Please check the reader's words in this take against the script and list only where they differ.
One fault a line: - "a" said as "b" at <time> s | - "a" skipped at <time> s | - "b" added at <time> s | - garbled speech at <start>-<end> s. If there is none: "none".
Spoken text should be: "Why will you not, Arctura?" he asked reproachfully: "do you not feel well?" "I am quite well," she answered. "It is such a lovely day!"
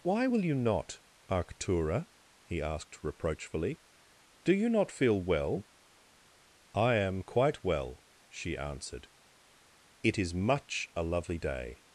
- "such" said as "much" at 10.3 s